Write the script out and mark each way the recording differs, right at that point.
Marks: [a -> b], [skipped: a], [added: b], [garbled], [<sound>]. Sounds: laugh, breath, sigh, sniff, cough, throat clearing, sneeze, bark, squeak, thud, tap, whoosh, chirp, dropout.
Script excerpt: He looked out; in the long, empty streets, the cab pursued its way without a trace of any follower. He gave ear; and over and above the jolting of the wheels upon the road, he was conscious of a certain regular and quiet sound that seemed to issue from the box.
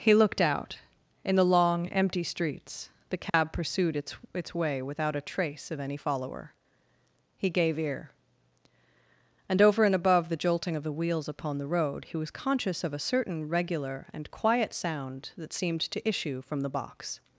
He looked out; in the long, empty streets, the cab [dropout] pursued its [added: its] way without a trace of any follower. He gave ear; and over and above the jolting of the wheels upon the road, he was conscious of a certain regular and quiet sound that seemed to issue from the box.